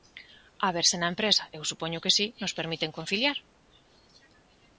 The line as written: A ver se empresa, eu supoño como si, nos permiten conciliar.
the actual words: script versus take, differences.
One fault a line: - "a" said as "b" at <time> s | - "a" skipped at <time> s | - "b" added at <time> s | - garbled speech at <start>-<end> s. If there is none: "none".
- "na" added at 1.0 s
- "como" said as "que" at 2.0 s